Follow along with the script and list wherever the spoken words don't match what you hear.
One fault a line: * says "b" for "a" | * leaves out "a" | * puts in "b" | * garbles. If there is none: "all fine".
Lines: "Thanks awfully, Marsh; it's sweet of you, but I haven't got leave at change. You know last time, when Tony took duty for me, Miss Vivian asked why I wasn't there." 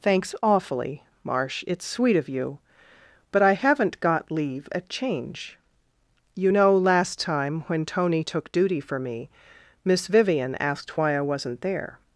all fine